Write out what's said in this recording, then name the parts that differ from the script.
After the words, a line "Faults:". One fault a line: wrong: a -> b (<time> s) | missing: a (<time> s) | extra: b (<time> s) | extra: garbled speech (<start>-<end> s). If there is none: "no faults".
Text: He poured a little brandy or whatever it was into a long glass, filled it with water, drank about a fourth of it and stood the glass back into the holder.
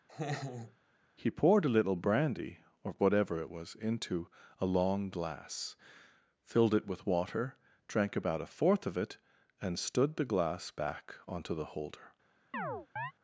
He poured a little brandy or whatever it was into a long glass, filled it with water, drank about a fourth of it and stood the glass back onto the holder.
Faults:
wrong: into -> onto (11.3 s)